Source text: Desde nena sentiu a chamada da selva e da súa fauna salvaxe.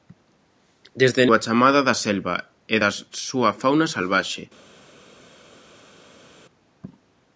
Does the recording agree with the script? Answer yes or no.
no